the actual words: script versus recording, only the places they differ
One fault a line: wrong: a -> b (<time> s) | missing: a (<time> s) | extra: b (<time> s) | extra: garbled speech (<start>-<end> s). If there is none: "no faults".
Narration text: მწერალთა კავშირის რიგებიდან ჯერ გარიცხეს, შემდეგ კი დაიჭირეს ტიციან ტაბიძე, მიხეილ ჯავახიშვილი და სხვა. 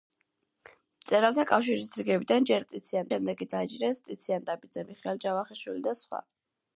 wrong: გარიცხეს -> ტიციან (2.7 s)